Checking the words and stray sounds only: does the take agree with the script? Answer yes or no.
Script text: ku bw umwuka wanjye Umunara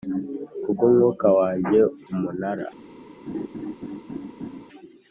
no